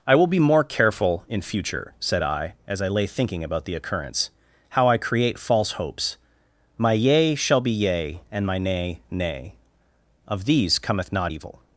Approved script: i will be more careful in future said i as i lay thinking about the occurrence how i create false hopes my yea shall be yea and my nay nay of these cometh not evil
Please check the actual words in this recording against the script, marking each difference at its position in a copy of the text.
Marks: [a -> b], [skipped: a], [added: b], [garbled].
i will be more careful in future said i as i lay thinking about the occurrence how i create false hopes my yea shall be yea and my nay nay of these cometh not evil